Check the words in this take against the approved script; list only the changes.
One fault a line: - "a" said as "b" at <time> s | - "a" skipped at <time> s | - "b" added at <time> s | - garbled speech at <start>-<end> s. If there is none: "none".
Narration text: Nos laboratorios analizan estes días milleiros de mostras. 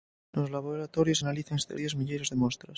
none